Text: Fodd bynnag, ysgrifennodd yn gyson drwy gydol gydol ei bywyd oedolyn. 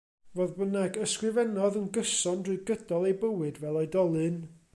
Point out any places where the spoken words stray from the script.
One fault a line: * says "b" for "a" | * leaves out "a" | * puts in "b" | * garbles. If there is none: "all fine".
* leaves out "gydol"
* puts in "fel"